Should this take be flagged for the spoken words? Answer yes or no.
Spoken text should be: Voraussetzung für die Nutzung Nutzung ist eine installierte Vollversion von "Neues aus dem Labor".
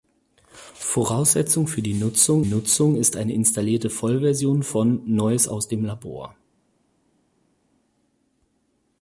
no